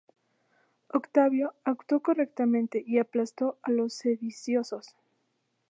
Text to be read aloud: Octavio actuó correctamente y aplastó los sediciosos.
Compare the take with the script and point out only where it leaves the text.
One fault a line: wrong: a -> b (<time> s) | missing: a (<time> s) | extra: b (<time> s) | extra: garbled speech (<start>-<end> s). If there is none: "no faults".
extra: a (3.6 s)